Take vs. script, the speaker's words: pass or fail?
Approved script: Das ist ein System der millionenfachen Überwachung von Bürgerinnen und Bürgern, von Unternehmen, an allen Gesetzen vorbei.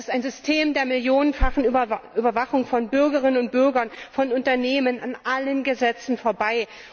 pass